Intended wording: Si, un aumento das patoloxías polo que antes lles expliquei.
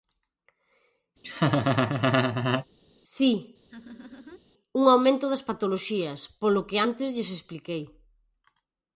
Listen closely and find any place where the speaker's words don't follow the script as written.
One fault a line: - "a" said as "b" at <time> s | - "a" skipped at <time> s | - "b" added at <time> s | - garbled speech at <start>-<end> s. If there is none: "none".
none